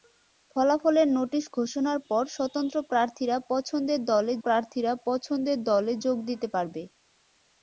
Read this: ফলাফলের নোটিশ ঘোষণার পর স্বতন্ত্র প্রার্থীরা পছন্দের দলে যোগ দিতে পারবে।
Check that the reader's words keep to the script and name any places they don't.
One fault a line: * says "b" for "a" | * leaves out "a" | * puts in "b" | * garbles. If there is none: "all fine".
* puts in "প্রার্থীরা পছন্দের দলে"